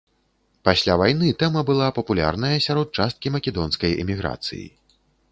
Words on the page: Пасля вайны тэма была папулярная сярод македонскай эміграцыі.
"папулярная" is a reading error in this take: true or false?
false